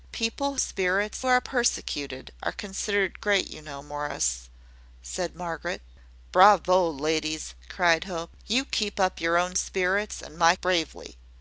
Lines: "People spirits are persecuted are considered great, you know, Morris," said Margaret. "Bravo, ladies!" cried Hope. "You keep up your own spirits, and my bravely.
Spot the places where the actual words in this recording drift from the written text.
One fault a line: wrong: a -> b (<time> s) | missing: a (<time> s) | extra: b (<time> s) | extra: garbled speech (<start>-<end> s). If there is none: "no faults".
no faults